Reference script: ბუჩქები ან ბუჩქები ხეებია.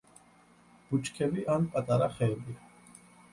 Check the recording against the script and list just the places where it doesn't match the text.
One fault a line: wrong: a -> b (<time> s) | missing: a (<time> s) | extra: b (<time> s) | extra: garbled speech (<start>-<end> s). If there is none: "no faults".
wrong: ბუჩქები -> პატარა (1.8 s)